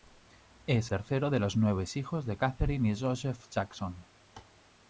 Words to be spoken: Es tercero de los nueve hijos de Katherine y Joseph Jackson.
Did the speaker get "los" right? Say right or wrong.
right